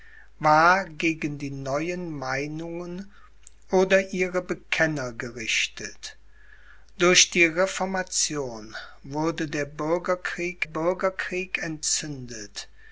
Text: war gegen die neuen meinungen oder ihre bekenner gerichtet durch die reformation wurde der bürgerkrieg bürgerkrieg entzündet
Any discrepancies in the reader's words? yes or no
no